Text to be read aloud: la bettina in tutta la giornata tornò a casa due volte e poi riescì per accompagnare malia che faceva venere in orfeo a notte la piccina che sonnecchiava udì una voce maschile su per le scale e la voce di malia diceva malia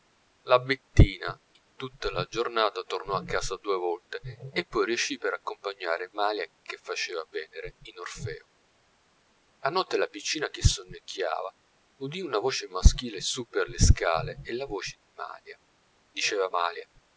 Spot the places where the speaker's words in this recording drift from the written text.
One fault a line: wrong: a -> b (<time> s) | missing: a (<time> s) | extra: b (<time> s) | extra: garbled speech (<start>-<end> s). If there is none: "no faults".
no faults